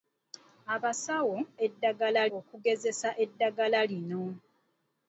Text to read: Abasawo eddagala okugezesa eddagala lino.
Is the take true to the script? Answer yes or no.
yes